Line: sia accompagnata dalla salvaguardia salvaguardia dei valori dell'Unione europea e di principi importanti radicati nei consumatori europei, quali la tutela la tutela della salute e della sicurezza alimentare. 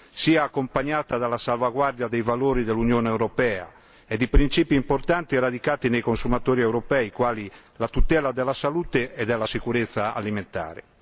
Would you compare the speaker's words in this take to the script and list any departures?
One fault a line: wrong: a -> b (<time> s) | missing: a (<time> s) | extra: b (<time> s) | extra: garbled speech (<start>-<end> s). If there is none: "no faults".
missing: salvaguardia (2.1 s)
missing: la tutela (8.3 s)